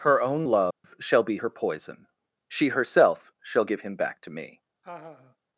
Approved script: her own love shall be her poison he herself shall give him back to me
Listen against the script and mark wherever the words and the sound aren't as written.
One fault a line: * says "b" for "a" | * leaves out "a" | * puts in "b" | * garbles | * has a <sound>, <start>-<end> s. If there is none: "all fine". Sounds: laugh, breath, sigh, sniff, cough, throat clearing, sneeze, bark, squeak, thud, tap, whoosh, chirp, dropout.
* has a dropout, 0.7-0.8 s
* says "she" for "he"
* has a laugh, 4.8-5.4 s